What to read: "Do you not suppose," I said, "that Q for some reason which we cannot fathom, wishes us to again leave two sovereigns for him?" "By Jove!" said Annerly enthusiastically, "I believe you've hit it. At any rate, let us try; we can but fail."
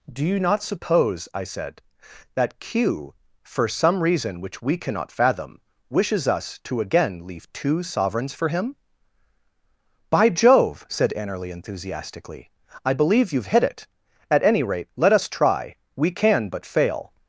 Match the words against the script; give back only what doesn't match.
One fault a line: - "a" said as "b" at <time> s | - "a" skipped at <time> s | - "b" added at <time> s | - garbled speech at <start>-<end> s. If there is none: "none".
none